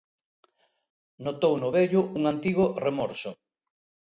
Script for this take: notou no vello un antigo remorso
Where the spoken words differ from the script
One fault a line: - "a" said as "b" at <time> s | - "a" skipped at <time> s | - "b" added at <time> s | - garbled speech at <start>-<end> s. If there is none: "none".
none